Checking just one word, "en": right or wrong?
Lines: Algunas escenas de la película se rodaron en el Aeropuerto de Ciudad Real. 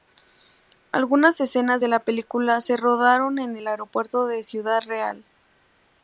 right